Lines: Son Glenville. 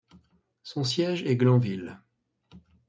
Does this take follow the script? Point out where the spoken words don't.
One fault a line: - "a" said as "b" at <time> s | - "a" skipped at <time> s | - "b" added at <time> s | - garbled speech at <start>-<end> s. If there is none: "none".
- "siège est" added at 0.8 s